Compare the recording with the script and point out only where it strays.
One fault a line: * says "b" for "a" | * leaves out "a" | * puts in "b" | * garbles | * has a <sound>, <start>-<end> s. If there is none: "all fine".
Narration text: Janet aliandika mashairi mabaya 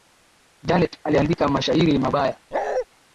* has a bark, 2.5-2.9 s